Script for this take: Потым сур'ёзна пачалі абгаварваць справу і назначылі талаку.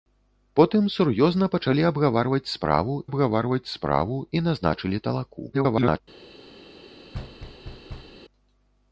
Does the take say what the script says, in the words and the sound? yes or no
no